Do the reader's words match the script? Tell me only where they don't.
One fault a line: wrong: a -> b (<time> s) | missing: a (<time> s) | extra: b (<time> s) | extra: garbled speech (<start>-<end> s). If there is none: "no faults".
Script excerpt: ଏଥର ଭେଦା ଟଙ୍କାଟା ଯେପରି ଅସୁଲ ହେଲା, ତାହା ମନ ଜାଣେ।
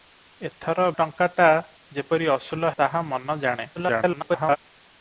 missing: ଭେଦା (0.8 s)
missing: ହେଲା (2.7 s)
extra: garbled speech (3.8-4.6 s)